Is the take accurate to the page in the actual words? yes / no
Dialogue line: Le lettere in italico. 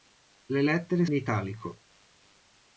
yes